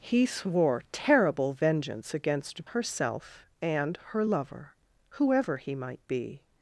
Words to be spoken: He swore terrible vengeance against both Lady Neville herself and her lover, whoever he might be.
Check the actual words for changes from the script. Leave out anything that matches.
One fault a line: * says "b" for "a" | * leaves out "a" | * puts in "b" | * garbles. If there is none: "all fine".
* leaves out "both Lady Neville"